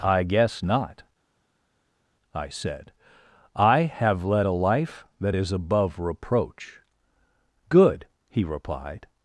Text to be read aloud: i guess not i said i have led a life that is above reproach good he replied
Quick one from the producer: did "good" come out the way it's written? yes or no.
yes